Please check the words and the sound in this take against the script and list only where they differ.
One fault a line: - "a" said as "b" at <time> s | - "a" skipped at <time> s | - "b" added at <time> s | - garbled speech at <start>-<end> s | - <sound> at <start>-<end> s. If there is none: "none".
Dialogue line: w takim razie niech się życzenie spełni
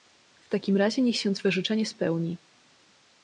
- "twe" added at 1.3 s